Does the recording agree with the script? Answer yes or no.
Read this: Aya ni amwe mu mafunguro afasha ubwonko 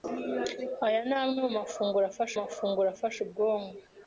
no